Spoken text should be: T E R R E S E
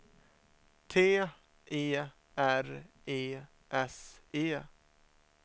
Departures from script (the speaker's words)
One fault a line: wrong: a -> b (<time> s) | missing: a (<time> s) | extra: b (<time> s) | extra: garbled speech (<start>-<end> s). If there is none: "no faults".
missing: R (2.8 s)